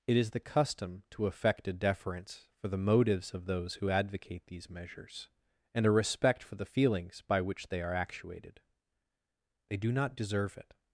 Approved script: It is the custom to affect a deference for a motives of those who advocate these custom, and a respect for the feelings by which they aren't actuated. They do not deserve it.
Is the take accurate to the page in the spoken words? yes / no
no